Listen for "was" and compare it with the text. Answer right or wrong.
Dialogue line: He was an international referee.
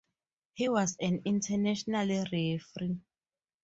right